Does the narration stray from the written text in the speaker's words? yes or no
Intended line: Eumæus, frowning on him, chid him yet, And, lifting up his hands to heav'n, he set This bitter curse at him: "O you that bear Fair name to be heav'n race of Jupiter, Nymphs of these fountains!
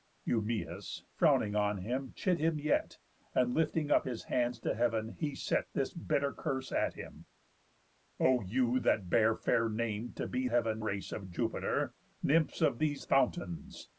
no